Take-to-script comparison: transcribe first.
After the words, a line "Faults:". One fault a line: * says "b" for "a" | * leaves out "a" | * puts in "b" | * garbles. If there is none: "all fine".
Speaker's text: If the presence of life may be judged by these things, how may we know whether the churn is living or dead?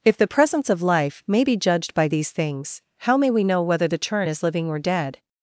If the presence of life may be judged by these things, how may we know whether the churn is living or dead?
Faults:
all fine